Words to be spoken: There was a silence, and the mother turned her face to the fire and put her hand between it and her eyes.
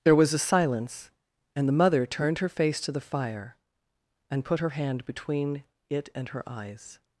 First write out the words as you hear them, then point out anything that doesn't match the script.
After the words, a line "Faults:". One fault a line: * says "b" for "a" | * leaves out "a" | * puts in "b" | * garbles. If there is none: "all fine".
There was a silence, and the mother turned her face to the fire and put her hand between it and her eyes.
Faults:
all fine